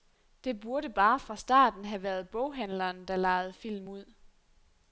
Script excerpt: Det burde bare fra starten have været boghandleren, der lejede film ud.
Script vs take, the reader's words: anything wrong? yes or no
no